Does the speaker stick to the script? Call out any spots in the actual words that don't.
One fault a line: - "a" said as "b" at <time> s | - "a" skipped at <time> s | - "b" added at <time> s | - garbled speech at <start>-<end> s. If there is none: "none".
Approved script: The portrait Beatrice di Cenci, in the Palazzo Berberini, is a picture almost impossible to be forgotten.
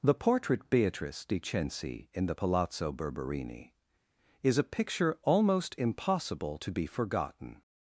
none